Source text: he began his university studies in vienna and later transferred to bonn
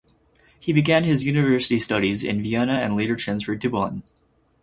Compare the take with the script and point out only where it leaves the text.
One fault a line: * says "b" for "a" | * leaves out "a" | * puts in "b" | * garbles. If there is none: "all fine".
all fine